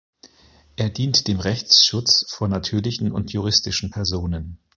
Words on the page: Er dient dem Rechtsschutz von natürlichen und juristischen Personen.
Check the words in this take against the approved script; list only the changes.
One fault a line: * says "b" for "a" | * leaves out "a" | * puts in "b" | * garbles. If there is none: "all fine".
all fine